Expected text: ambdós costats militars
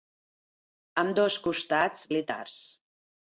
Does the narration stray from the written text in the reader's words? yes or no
no